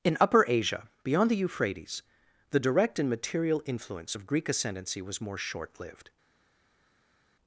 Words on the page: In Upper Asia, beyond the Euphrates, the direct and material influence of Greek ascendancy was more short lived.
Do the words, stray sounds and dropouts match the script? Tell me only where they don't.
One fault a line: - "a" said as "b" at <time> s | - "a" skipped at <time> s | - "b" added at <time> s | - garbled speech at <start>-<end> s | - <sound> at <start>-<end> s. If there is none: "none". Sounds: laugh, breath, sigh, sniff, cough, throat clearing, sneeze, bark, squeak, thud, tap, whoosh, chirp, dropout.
none